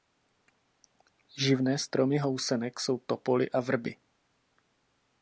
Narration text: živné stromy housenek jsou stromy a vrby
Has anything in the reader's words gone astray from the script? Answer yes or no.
yes